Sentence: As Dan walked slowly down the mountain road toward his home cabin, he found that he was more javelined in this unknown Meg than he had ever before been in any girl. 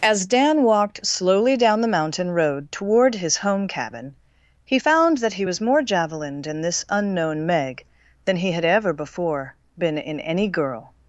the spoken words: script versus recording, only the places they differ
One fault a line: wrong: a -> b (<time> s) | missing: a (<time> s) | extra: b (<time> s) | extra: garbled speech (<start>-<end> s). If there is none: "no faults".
no faults